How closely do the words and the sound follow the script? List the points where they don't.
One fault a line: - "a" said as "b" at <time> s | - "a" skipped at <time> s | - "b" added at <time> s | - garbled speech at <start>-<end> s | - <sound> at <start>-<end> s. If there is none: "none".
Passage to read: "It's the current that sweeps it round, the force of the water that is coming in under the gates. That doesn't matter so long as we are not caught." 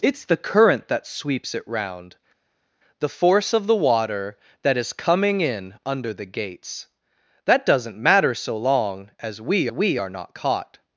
- "we" added at 9.7 s